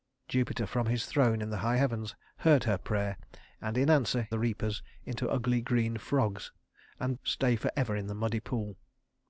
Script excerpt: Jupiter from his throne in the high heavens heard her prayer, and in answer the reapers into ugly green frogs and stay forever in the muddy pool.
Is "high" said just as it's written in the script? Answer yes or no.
yes